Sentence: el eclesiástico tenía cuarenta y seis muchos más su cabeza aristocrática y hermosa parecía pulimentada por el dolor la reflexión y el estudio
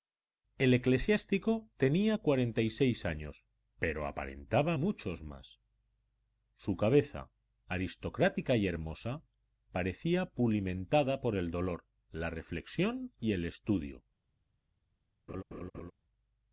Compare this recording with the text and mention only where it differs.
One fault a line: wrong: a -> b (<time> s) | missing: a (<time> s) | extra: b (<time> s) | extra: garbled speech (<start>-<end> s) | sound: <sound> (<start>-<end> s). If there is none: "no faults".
extra: años pero aparentaba (3.0 s)
sound: laugh (15.3-15.9 s)